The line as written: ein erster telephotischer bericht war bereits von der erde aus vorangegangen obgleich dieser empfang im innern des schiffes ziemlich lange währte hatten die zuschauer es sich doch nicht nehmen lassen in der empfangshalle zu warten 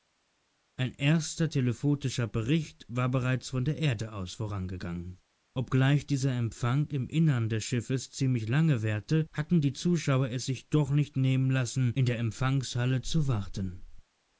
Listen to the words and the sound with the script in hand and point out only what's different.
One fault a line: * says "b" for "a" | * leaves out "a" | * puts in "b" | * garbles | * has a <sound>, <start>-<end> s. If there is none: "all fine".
all fine